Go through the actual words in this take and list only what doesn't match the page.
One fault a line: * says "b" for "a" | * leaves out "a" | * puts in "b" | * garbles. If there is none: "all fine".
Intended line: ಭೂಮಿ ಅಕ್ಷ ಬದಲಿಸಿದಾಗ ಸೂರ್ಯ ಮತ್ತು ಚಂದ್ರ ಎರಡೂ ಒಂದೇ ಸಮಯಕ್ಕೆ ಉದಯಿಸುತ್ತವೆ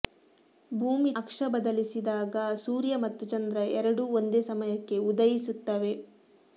all fine